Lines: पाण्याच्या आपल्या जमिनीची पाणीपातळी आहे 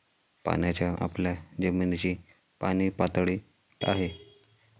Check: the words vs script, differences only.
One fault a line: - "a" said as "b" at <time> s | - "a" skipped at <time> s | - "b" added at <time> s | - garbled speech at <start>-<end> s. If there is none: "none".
none